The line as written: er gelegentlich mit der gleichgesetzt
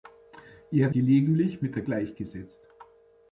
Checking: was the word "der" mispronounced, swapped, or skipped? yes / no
no